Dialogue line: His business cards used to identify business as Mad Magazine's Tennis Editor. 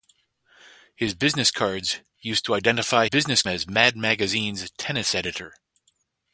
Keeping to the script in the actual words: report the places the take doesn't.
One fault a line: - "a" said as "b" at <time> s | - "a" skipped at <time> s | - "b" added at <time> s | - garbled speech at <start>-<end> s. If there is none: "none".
none